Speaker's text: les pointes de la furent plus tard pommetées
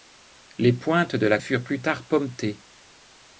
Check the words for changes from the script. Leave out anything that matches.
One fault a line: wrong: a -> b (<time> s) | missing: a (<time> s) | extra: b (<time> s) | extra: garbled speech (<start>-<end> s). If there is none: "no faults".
no faults